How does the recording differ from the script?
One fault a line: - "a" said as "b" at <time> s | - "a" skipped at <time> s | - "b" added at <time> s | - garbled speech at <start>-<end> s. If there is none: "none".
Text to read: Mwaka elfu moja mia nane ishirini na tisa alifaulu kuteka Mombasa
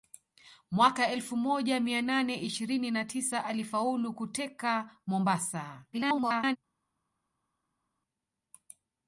- garbled speech at 5.9-6.6 s